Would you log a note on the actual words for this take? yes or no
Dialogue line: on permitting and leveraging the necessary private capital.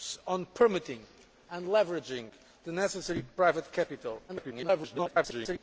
yes